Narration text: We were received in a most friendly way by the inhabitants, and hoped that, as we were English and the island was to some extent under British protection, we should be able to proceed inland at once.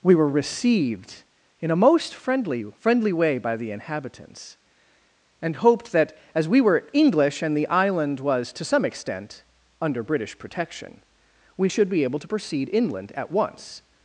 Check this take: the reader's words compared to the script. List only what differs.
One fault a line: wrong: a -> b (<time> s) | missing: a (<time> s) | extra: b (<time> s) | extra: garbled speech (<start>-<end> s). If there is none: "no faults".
extra: friendly (2.8 s)